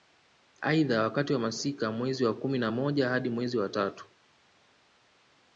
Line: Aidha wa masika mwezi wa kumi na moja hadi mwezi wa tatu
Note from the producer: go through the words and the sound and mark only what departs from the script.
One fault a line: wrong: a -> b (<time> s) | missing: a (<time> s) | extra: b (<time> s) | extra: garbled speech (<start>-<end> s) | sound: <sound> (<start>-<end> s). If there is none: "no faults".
extra: wakati (1.0 s)